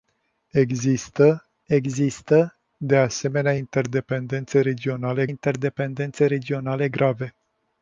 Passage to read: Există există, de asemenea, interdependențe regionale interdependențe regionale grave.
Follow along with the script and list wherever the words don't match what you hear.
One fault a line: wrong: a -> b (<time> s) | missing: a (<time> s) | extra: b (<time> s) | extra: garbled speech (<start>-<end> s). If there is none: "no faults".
no faults